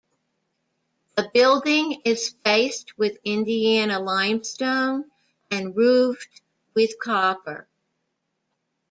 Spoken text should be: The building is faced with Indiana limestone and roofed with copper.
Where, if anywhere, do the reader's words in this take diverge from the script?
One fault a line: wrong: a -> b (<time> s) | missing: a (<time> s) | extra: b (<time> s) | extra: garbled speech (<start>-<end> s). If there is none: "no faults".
no faults